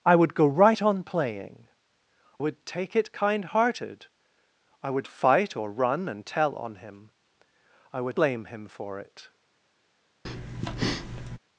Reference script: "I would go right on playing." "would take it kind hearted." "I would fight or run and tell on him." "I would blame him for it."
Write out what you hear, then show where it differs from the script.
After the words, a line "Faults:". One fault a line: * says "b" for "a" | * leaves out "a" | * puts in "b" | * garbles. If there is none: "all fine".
"I would go right on playing." "would take it kind hearted." "I would fight or run and tell on him." "I would blame him for it."
Faults:
all fine